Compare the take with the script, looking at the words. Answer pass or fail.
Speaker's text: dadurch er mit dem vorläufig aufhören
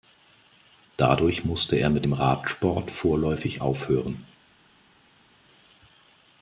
fail